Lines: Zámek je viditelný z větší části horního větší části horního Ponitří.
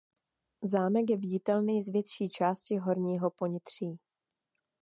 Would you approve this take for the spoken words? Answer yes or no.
no